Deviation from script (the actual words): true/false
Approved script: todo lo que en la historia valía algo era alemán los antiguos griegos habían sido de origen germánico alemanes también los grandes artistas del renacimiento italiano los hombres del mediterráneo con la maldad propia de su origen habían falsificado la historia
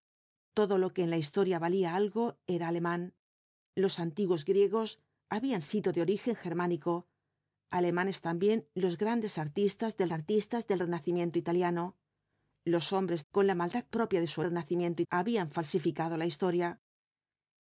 true